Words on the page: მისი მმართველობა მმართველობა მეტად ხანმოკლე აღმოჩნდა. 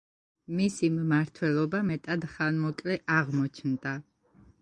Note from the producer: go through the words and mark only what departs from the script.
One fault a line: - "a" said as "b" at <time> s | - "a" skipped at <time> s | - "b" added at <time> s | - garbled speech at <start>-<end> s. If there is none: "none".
- "მმართველობა" skipped at 1.8 s